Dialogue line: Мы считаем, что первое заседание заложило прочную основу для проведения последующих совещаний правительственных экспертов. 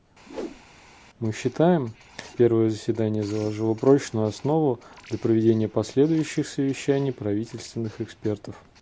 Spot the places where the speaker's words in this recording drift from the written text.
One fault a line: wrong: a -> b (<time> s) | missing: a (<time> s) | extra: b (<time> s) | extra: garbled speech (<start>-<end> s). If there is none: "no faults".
missing: что (1.9 s)